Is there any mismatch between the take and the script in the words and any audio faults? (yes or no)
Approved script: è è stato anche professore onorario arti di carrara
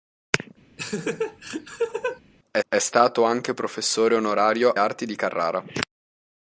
yes